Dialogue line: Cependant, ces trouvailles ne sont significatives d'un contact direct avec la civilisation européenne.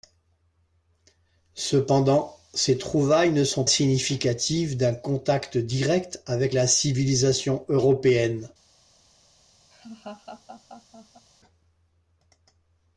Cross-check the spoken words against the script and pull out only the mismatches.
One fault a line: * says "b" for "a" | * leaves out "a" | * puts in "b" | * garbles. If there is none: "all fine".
all fine